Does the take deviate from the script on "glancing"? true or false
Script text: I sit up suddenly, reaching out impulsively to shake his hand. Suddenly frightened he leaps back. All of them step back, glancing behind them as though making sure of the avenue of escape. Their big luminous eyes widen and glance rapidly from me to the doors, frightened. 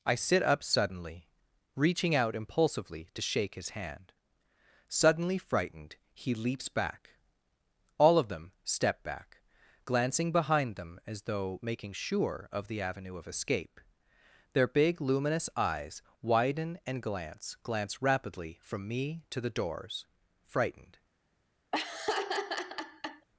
false